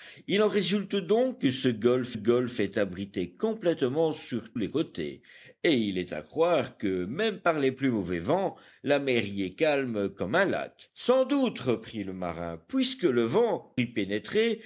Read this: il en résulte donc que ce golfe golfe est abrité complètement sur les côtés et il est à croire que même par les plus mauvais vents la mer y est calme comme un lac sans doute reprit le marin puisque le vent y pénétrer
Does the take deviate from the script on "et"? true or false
false